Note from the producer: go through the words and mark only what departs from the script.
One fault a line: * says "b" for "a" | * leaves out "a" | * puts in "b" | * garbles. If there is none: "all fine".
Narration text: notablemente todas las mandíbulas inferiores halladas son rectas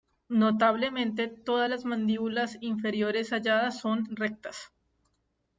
all fine